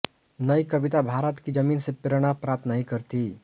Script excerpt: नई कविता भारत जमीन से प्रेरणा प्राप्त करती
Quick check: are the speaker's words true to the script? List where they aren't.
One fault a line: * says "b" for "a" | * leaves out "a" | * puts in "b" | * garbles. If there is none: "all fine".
* puts in "की"
* puts in "नहीं"